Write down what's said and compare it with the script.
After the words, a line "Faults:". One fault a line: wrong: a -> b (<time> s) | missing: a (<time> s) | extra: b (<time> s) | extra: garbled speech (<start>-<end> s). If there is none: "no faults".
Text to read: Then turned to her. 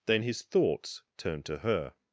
Then his thoughts turned to her.
Faults:
extra: his thoughts (0.2 s)